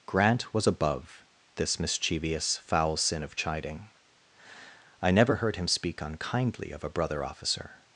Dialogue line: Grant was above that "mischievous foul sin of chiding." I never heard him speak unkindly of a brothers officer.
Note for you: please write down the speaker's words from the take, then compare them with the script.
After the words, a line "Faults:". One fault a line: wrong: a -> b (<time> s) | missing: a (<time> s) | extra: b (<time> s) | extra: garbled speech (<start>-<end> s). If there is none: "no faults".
Grant was above this "mischievous foul sin of chiding." I never heard him speak unkindly of a brother officer.
Faults:
wrong: that -> this (1.6 s)
wrong: brothers -> brother (6.9 s)